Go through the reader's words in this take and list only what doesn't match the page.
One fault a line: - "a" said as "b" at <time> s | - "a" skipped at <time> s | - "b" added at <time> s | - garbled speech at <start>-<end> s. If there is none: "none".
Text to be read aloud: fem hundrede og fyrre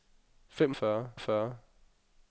- "hundrede" said as "fyrre" at 0.7 s